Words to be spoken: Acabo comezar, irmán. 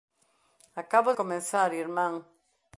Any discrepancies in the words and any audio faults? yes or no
no